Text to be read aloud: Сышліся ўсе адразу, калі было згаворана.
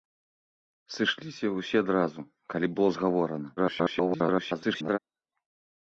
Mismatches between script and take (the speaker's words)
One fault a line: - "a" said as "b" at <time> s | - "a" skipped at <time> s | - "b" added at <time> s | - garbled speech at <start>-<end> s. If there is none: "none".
- garbled speech at 3.6-5.0 s